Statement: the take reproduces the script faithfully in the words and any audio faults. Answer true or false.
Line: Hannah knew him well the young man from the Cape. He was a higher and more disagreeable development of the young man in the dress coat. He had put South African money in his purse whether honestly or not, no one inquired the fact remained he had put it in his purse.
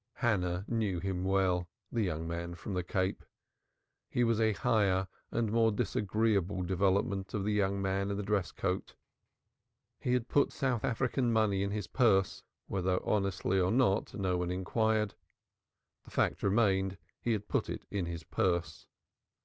true